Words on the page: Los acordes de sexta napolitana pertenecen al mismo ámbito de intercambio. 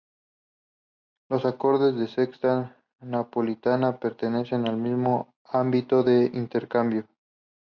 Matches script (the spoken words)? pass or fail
pass